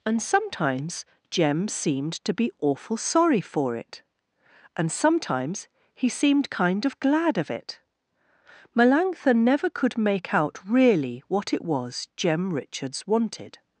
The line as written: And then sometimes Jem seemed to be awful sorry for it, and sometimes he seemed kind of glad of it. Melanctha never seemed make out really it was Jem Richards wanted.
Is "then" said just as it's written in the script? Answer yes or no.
no